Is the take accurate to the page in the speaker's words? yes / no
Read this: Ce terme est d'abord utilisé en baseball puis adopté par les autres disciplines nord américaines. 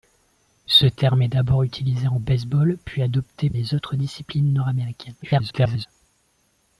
no